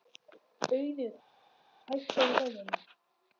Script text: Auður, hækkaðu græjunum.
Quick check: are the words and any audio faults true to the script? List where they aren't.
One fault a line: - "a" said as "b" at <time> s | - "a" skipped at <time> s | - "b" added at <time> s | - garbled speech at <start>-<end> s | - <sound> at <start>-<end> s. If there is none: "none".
none